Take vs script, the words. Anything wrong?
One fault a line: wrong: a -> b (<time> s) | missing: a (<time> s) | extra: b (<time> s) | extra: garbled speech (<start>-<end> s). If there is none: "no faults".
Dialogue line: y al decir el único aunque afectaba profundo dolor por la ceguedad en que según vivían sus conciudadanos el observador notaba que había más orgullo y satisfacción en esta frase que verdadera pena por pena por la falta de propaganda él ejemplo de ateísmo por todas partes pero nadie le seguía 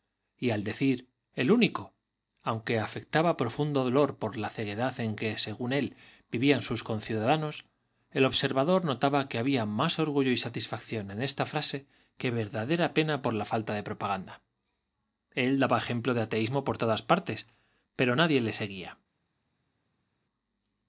extra: él (5.7 s)
missing: pena por (13.3 s)
extra: daba (15.6 s)